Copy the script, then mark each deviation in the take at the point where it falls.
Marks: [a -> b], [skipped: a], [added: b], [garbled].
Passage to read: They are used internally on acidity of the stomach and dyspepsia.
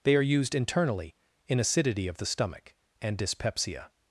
They are used internally [on -> in] acidity of the stomach and dyspepsia.